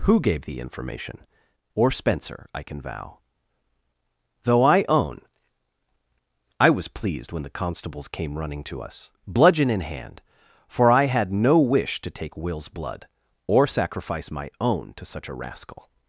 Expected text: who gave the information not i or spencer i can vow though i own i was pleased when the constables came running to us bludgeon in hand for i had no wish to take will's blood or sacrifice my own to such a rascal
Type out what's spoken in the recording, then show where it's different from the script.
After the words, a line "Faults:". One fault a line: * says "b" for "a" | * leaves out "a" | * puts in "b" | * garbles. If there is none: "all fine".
who gave the information or spencer i can vow though i own i was pleased when the constables came running to us bludgeon in hand for i had no wish to take will's blood or sacrifice my own to such a rascal
Faults:
* leaves out "not i"